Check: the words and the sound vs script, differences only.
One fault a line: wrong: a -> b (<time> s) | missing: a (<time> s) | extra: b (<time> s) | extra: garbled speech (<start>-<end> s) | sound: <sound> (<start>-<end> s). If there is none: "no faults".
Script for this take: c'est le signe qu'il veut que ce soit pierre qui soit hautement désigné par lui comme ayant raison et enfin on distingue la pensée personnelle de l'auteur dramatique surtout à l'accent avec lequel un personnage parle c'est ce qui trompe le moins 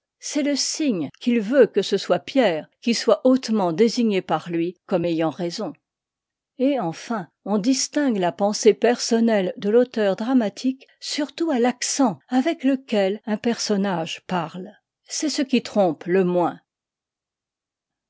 no faults